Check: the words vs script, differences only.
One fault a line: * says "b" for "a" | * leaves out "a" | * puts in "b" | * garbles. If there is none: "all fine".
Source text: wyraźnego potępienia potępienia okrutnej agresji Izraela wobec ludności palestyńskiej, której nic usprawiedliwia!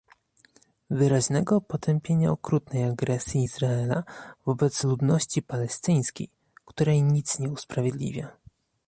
* leaves out "potępienia"
* puts in "nie"